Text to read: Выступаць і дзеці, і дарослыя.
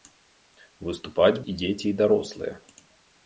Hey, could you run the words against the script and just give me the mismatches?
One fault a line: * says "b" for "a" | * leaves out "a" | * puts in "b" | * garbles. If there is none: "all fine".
all fine